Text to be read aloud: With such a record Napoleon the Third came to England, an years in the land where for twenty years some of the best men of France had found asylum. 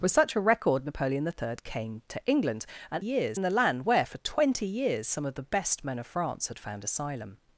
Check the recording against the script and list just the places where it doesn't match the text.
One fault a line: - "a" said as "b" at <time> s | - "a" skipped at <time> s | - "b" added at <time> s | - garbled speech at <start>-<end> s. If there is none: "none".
none